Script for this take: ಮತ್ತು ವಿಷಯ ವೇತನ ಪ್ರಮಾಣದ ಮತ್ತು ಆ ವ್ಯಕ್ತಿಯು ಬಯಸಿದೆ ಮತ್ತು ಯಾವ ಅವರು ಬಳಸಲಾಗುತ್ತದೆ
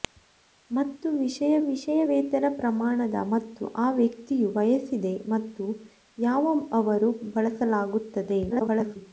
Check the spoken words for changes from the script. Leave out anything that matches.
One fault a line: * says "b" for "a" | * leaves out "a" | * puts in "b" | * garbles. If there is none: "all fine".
* puts in "ವಿಷಯ"
* garbles